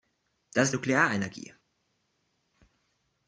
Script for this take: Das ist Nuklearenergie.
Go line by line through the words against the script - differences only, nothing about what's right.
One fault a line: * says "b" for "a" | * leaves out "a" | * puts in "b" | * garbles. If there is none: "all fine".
all fine